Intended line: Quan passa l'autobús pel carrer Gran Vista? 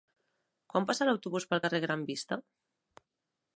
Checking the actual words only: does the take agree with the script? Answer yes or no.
yes